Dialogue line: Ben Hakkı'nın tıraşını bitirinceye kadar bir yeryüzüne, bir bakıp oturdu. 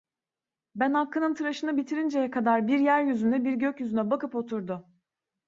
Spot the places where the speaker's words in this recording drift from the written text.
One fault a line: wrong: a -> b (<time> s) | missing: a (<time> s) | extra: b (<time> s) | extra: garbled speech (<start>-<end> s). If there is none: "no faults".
extra: gökyüzüne (3.5 s)